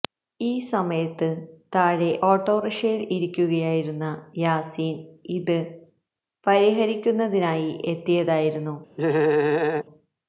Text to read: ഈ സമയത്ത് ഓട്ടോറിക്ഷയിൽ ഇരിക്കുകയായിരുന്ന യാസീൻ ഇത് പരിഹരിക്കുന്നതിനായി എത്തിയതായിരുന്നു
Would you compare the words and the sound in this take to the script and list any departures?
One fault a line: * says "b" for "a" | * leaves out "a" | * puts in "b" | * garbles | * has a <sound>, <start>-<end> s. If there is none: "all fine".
* puts in "താഴെ"
* has a laugh, 9.0-9.8 s